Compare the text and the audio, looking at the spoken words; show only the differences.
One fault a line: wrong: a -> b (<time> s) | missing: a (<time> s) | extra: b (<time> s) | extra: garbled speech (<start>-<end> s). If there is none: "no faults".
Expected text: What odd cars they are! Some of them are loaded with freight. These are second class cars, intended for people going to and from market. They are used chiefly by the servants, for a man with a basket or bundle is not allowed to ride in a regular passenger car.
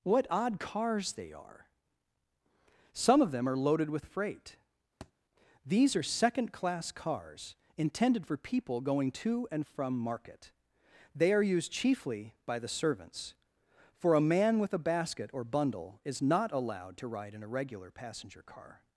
no faults